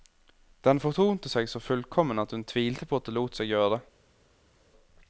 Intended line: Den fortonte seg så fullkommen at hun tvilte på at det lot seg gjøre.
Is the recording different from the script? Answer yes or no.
no